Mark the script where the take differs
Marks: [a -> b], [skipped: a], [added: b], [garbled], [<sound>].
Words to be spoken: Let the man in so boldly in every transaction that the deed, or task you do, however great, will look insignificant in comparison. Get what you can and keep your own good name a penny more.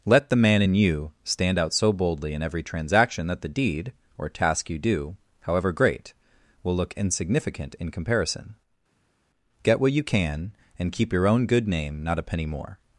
Let the man in [added: you stand out] so boldly in every transaction that the deed, or task you do, however great, will look insignificant in comparison. Get what you can and keep your own good name [added: not] a penny more.